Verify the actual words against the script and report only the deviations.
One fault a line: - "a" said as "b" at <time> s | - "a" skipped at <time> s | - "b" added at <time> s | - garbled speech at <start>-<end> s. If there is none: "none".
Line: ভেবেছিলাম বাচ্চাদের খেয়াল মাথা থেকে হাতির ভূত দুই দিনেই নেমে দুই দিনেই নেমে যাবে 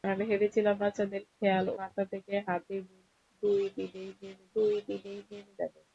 none